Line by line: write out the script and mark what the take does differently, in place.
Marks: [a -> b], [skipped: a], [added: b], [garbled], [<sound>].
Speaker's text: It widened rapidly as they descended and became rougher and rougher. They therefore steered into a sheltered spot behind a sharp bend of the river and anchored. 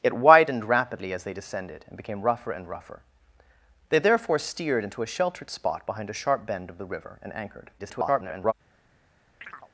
It widened rapidly as they descended and became rougher and rougher. They therefore steered into a sheltered spot behind a sharp bend of the river and anchored. [garbled] [chirp]